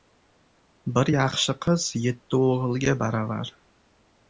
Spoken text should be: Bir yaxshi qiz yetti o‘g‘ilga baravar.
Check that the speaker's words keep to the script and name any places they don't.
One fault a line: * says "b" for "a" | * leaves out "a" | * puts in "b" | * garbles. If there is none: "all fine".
all fine